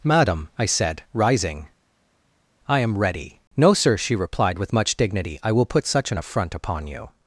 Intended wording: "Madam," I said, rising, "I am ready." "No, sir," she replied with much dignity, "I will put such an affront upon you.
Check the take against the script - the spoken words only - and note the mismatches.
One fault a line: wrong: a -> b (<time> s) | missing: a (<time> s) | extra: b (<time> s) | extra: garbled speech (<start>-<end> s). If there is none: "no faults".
no faults